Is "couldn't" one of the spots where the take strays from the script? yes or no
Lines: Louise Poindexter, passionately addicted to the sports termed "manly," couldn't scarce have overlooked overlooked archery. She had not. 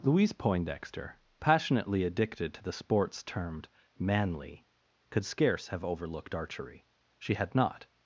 yes